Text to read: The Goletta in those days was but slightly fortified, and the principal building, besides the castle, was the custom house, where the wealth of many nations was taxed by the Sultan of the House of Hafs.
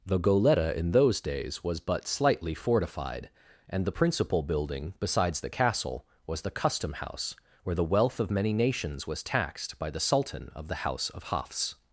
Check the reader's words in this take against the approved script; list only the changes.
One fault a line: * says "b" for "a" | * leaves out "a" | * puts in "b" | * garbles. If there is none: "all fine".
all fine